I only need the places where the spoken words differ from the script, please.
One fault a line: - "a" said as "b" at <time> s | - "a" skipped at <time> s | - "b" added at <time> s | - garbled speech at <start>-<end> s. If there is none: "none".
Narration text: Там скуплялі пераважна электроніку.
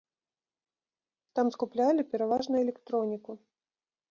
none